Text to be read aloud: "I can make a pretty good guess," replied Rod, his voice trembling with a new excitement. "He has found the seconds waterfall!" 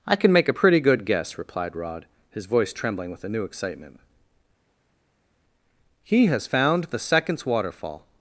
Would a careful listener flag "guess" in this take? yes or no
no